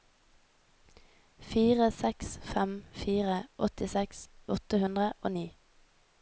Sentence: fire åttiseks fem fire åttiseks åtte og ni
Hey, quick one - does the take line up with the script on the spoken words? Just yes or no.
no